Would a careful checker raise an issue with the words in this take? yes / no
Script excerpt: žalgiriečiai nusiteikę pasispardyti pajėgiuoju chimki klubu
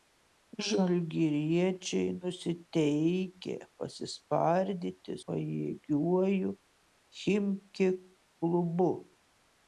no